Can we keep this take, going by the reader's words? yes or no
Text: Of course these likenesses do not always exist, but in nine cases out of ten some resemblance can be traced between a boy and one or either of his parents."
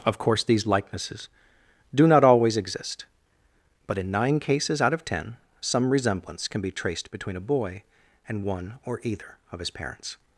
yes